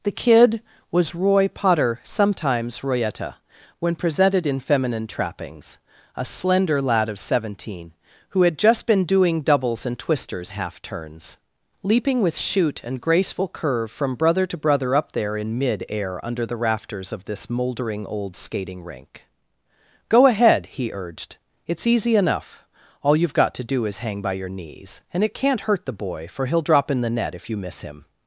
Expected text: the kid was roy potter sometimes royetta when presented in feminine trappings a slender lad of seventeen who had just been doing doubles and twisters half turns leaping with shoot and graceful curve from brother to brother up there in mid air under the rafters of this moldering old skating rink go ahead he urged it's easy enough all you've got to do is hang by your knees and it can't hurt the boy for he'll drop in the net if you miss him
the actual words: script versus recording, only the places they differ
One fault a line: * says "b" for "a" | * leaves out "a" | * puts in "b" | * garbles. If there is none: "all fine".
all fine